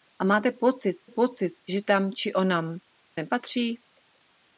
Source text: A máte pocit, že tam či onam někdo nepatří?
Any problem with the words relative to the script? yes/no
yes